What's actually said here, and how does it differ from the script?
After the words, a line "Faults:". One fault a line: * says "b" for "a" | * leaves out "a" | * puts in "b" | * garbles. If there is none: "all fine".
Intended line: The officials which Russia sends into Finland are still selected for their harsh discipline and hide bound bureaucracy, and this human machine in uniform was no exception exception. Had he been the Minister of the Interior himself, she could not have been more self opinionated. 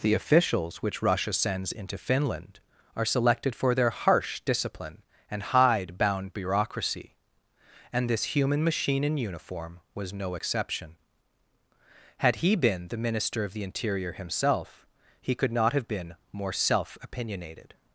The officials which Russia sends into Finland are selected for their harsh discipline and hide bound bureaucracy, and this human machine in uniform was no exception. Had he been the Minister of the Interior himself, he could not have been more self opinionated.
Faults:
* leaves out "still"
* leaves out "exception"
* says "he" for "she"